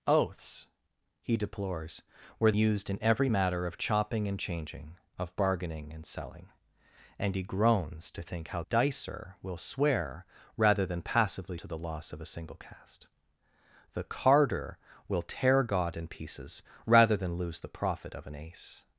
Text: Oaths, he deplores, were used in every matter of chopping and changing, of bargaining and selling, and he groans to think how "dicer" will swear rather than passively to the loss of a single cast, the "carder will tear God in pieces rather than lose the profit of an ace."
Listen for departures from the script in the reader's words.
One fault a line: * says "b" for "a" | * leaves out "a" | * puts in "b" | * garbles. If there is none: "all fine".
all fine